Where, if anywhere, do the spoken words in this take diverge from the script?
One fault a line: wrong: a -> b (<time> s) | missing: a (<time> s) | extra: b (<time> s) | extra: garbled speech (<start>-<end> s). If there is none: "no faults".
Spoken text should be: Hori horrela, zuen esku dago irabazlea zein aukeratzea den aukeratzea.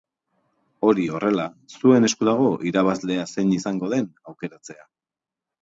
wrong: aukeratzea -> izango (3.6 s)